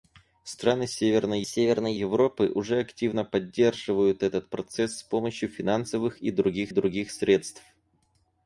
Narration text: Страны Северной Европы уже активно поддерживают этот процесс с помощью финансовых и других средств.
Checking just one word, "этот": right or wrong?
right